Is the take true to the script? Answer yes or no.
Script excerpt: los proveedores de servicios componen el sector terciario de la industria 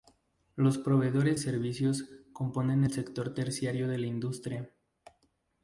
no